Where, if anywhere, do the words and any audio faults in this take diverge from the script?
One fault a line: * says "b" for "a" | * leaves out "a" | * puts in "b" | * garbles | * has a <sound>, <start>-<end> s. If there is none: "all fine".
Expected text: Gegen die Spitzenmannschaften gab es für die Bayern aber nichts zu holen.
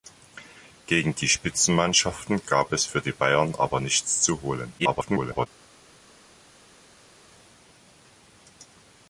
* garbles